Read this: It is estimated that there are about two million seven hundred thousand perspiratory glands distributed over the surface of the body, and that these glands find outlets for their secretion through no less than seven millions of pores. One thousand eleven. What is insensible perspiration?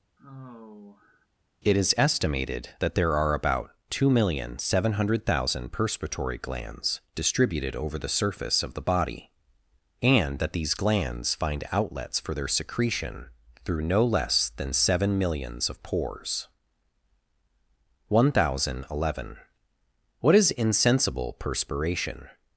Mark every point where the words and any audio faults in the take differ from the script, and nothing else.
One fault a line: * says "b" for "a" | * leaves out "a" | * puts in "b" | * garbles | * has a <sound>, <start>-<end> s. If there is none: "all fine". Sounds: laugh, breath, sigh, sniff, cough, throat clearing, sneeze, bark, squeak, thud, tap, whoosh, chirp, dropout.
* has a sigh, 0.2-1.3 s